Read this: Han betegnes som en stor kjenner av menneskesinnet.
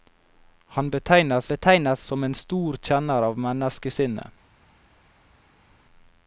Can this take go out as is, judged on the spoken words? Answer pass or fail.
fail